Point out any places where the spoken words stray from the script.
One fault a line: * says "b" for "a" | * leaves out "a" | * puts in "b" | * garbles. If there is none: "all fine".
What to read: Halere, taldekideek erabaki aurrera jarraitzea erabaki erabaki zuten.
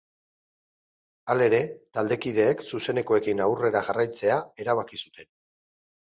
* says "zuzenekoekin" for "erabaki"
* leaves out "erabaki"